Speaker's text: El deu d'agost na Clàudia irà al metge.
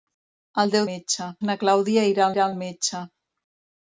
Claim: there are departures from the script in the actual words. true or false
true